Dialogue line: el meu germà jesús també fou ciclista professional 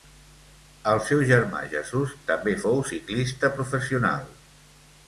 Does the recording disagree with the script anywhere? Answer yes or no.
yes